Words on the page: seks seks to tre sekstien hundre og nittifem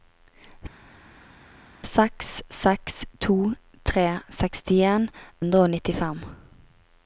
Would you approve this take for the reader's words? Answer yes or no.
yes